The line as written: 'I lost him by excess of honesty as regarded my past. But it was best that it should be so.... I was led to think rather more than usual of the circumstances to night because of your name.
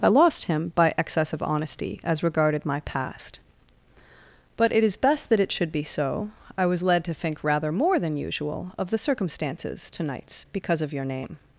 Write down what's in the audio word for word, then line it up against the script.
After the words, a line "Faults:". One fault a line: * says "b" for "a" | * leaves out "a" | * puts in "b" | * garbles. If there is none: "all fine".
'I lost him by excess of honesty as regarded my past. But it is best that it should be so.... I was led to think rather more than usual of the circumstances to nights because of your name.
Faults:
* says "is" for "was"
* says "nights" for "night"